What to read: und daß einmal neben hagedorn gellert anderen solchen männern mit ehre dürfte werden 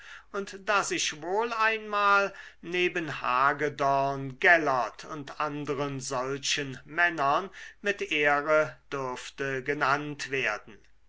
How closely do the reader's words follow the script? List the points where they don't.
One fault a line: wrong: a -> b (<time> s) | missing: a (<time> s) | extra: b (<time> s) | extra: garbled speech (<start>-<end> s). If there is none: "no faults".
extra: ich wohl (0.9 s)
extra: und (5.0 s)
extra: genannt (9.6 s)